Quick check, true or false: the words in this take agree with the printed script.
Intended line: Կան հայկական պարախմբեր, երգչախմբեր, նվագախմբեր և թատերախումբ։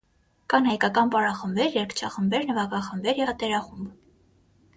false